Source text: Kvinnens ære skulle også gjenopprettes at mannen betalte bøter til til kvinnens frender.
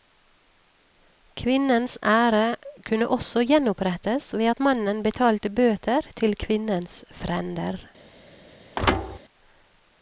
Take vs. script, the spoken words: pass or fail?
fail